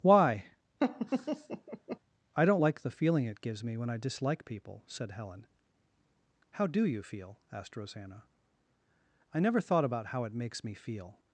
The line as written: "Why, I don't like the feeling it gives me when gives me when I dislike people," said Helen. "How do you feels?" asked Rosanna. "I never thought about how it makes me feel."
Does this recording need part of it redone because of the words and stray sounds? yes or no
yes